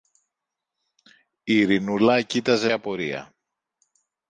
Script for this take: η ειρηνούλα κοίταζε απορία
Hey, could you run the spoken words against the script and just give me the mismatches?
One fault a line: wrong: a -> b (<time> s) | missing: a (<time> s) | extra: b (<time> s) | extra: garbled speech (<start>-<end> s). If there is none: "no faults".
no faults